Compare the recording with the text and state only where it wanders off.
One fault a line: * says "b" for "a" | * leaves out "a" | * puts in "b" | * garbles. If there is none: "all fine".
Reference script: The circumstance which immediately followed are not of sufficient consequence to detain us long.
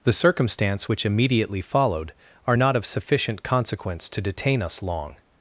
all fine